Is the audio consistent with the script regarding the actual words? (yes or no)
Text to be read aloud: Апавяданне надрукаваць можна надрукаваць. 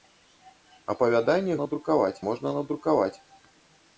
yes